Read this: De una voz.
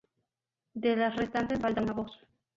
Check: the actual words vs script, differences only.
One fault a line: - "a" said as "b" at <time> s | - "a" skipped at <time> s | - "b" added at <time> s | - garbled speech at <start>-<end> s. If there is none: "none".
- "las restantes falta" added at 0.9 s